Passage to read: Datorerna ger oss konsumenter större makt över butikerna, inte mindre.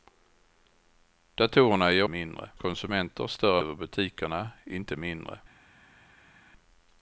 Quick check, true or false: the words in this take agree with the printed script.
false